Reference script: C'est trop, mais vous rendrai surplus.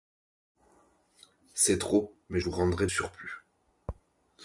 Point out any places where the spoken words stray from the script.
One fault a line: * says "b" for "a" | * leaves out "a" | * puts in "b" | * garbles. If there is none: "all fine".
all fine